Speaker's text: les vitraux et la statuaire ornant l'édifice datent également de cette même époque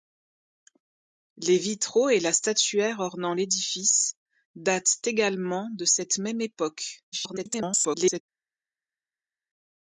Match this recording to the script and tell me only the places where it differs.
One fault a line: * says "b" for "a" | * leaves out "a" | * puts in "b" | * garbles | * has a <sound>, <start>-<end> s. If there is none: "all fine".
* garbles